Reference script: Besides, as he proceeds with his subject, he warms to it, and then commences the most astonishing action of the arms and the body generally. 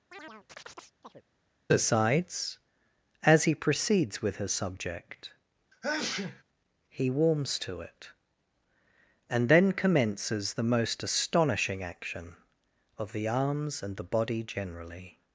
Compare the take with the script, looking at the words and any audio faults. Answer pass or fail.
fail